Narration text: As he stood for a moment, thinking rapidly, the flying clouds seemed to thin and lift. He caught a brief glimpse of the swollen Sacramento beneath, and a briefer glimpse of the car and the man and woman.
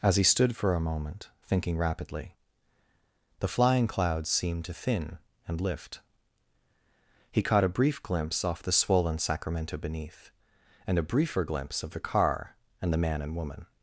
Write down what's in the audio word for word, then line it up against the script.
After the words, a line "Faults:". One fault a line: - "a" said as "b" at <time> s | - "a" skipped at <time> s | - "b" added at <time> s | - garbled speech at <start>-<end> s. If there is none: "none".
As he stood for a moment, thinking rapidly, the flying clouds seemed to thin and lift. He caught a brief glimpse off the swollen Sacramento beneath, and a briefer glimpse of the car and the man and woman.
Faults:
- "of" said as "off" at 8.4 s